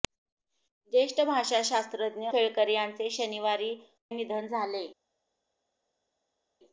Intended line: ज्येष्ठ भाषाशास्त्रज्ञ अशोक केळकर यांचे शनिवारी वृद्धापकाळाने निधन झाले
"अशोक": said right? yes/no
no